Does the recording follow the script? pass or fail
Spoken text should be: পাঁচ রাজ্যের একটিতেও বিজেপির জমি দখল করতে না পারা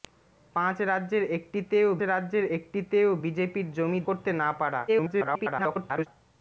fail